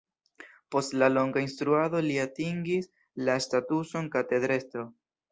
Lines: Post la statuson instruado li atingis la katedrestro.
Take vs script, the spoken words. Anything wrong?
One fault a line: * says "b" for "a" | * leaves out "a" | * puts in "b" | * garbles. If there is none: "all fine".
* says "longa" for "statuson"
* puts in "statuson"